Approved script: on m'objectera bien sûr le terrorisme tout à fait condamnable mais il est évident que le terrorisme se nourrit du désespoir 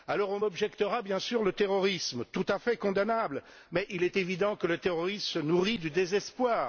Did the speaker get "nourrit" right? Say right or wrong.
right